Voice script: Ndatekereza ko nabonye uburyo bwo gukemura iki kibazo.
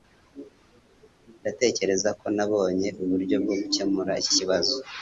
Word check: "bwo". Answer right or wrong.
right